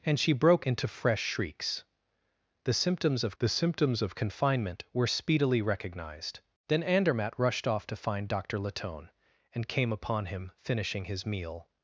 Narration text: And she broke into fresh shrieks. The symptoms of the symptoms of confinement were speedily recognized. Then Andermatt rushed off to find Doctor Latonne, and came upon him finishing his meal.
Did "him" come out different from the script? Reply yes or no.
no